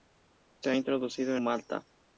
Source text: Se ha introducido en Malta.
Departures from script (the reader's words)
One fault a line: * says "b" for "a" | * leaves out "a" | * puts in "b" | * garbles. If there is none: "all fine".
all fine